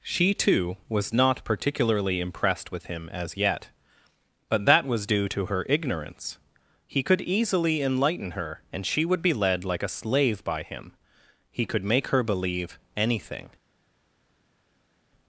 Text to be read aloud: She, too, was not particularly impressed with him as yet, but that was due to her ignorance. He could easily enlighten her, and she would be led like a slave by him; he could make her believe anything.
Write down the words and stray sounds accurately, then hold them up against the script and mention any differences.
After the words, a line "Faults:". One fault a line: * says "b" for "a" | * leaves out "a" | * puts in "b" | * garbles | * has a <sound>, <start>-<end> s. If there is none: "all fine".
She, too, was not particularly impressed with him as yet, but that was due to her ignorance. He could easily enlighten her, and she would be led like a slave by him; he could make her believe anything.
Faults:
all fine